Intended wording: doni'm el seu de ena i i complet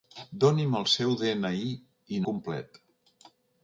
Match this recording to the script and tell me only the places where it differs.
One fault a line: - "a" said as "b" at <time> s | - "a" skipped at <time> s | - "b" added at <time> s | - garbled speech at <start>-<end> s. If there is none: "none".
none